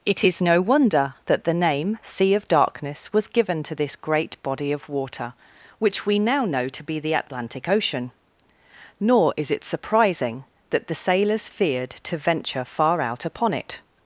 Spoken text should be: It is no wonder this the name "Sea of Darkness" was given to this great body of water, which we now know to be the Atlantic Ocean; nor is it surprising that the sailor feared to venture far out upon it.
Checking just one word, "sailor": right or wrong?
wrong